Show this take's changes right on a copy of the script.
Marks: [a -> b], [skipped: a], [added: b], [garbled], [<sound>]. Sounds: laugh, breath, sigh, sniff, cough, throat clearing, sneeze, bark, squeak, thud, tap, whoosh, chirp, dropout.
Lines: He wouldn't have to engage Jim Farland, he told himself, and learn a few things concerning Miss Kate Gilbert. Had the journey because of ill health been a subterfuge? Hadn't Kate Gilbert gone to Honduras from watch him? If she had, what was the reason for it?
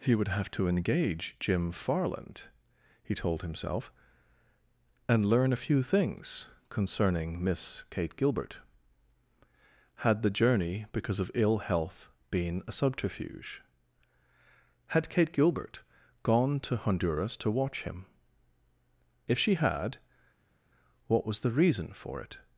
He [wouldn't -> would] have to engage Jim Farland, he told himself, and learn a few things concerning Miss Kate Gilbert. Had the journey because of ill health been a subterfuge? [Hadn't -> Had] Kate Gilbert gone to Honduras [from -> to] watch him? If she had, what was the reason for it?